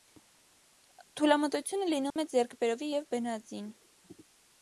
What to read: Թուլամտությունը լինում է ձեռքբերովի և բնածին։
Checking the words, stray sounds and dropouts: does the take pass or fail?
fail